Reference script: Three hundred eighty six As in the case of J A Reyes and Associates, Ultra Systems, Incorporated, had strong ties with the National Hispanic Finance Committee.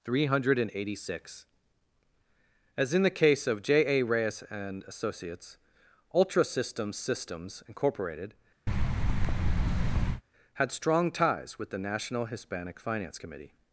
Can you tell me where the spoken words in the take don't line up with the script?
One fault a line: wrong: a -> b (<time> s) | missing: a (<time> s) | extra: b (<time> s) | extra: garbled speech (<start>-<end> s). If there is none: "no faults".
extra: Systems (7.0 s)